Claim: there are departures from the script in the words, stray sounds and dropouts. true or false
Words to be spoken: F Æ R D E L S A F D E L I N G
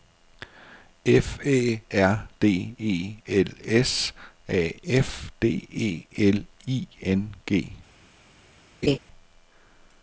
true